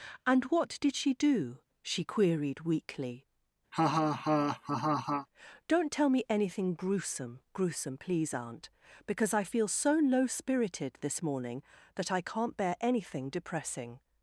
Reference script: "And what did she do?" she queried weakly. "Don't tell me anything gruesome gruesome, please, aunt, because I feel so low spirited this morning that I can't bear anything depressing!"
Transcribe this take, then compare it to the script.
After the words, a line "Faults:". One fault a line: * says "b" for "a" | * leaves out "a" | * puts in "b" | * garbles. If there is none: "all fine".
"And what did she do?" she queried weakly. "Don't tell me anything gruesome gruesome, please, aunt, because I feel so low spirited this morning that I can't bear anything depressing!"
Faults:
all fine